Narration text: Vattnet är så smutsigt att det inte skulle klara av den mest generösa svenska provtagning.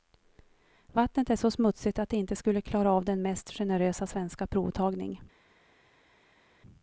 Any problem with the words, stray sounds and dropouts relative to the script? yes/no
no